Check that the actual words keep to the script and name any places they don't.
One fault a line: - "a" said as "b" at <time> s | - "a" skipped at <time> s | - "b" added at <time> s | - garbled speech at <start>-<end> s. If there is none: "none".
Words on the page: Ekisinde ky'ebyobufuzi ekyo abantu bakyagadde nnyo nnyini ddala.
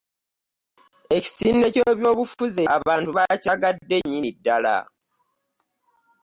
- "ekyo" skipped at 2.6 s
- "nnyo" skipped at 4.0 s